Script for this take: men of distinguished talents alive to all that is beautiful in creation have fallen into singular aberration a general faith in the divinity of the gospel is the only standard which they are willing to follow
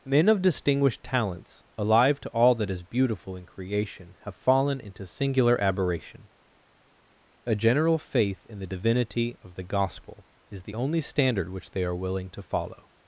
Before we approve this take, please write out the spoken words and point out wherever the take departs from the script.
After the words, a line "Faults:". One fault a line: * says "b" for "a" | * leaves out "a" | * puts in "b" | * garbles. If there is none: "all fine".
men of distinguished talents alive to all that is beautiful in creation have fallen into singular aberration a general faith in the divinity of the gospel is the only standard which they are willing to follow
Faults:
all fine